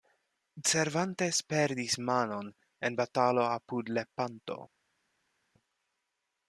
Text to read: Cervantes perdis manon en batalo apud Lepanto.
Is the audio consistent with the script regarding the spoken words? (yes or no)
yes